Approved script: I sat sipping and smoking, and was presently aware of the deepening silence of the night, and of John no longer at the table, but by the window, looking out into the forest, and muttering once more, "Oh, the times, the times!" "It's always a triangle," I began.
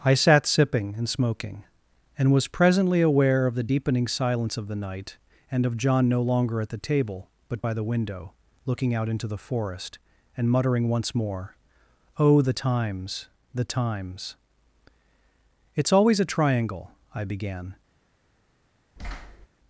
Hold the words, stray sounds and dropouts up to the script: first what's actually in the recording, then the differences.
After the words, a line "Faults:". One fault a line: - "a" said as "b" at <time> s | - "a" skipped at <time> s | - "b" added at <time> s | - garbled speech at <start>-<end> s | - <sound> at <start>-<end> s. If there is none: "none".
I sat sipping and smoking, and was presently aware of the deepening silence of the night, and of John no longer at the table, but by the window, looking out into the forest, and muttering once more, "Oh, the times, the times!" "It's always a triangle," I began.
Faults:
- thud at 19.0-19.5 s